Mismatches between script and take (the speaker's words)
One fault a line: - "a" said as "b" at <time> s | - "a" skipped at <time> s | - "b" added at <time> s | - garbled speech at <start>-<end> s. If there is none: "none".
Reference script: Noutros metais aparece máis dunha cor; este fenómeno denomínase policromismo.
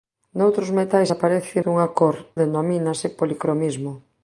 - "máis" skipped at 1.6 s
- "este fenómeno" skipped at 2.2 s